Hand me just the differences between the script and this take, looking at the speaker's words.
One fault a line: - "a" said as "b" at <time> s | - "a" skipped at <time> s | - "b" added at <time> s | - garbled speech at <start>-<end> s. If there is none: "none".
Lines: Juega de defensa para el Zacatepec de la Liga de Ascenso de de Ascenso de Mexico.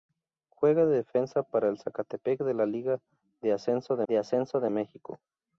none